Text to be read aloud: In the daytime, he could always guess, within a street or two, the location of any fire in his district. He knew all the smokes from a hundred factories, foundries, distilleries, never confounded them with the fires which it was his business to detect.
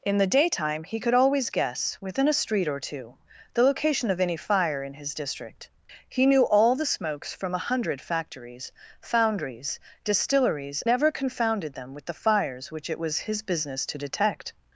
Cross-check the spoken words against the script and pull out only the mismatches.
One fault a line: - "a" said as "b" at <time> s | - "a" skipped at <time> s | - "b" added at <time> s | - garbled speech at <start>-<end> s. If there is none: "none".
none